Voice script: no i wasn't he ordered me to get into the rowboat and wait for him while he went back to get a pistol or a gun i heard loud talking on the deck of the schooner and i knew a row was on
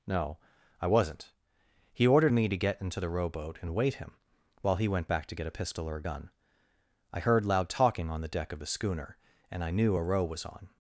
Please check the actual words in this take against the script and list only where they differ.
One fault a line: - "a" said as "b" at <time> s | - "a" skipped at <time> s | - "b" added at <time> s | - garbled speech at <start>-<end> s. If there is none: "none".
- "for" skipped at 4.0 s